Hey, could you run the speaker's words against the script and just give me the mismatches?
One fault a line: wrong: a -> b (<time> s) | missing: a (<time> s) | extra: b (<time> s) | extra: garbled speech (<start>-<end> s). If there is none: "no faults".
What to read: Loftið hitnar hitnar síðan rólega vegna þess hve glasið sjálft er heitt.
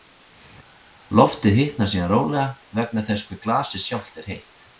missing: hitnar (1.9 s)